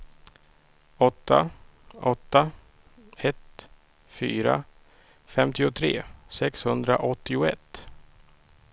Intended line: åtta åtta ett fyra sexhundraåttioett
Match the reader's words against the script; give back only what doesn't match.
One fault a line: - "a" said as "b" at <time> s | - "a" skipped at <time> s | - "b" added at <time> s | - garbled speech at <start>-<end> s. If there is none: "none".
- "femtiotre" added at 5.3 s